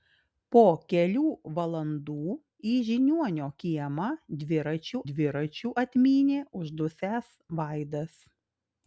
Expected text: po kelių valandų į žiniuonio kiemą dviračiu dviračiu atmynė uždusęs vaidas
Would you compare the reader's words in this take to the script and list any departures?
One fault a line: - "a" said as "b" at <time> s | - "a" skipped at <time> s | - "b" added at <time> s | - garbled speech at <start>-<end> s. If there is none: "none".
none